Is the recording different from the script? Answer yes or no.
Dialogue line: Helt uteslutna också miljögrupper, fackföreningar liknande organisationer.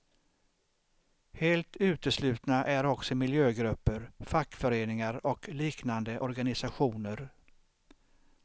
yes